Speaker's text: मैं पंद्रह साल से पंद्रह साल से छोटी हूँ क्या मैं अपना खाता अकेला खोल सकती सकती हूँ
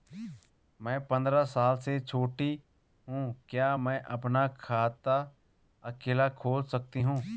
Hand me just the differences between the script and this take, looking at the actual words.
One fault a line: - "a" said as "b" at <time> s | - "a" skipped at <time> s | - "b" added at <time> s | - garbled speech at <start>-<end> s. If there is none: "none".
- "पंद्रह साल से" skipped at 2.0 s
- "सकती" skipped at 7.0 s